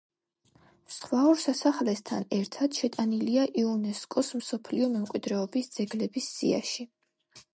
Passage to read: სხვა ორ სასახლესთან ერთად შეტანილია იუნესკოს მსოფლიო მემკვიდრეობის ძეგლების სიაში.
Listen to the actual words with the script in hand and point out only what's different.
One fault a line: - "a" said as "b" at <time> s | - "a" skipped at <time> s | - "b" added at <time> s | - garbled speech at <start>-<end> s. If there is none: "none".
none